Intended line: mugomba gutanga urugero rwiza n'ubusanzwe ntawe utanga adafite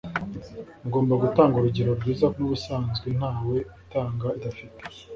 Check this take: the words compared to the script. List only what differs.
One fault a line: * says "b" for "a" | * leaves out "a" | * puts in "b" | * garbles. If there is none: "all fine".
all fine